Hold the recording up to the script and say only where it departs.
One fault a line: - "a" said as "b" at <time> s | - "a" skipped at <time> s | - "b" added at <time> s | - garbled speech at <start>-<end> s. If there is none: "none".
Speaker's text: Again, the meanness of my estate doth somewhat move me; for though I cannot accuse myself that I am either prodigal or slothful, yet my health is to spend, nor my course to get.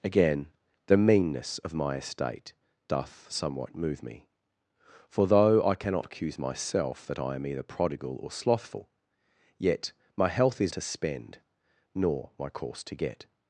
none